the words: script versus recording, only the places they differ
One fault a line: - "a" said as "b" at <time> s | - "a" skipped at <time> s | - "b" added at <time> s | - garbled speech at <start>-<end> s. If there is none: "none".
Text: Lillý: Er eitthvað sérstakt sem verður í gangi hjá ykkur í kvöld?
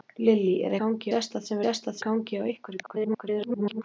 - "eitthvað" said as "gangi" at 0.8 s
- "verður" said as "sérstakt" at 1.6 s
- garbled speech at 2.8-3.8 s